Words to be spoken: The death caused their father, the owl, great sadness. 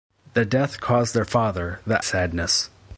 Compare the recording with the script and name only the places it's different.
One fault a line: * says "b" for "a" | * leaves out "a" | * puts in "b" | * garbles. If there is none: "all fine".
* leaves out "owl great"